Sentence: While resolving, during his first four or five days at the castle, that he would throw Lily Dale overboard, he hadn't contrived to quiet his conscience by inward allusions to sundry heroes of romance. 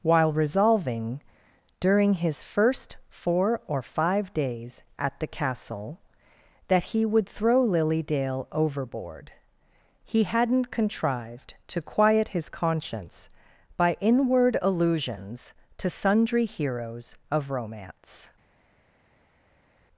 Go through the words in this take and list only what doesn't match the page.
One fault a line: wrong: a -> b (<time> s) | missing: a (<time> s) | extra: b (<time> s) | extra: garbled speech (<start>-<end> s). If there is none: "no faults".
no faults